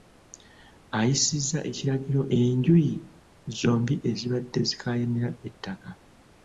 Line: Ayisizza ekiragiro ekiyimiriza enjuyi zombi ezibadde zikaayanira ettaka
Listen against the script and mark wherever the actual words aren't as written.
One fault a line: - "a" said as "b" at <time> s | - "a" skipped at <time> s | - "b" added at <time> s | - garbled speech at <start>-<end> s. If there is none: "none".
- "ekiyimiriza" skipped at 2.2 s